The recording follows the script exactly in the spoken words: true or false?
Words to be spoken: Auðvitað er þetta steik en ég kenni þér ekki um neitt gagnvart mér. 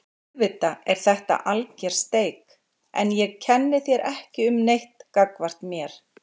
false